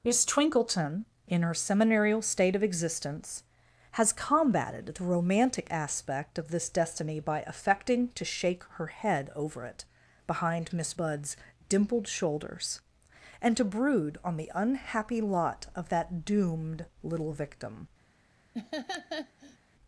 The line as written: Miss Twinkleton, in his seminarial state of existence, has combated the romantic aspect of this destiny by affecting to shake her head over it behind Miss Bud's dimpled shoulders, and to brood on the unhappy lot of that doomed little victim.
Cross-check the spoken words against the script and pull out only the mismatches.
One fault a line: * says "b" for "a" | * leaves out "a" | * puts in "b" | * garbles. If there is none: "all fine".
* says "her" for "his"